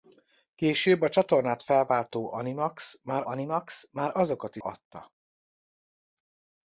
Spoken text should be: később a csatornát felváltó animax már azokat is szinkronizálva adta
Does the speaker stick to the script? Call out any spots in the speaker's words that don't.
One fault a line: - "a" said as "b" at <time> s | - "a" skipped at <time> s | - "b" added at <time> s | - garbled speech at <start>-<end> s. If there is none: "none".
- "animax már" added at 3.3 s
- "szinkronizálva" skipped at 4.6 s